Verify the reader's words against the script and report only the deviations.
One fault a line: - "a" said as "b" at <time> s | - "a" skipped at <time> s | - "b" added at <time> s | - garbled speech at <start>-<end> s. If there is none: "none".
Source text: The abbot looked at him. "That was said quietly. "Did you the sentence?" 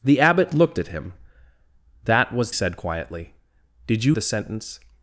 none